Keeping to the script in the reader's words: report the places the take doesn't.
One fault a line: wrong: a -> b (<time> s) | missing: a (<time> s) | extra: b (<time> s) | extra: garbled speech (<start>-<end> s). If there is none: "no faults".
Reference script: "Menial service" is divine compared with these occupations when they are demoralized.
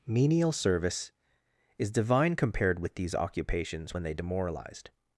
missing: are (4.1 s)